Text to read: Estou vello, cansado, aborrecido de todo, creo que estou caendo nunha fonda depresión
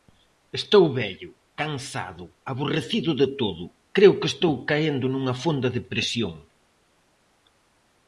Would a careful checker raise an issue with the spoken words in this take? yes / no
no